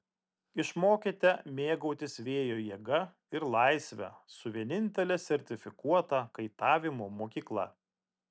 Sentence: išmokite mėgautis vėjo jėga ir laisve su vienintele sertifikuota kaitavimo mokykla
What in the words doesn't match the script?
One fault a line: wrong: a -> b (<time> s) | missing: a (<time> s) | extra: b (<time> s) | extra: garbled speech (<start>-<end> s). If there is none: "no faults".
no faults